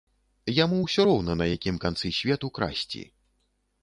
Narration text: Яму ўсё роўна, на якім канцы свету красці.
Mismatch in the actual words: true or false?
false